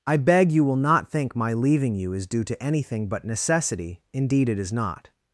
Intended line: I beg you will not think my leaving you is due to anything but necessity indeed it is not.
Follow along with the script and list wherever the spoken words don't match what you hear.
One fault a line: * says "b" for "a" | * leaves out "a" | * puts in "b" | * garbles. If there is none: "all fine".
all fine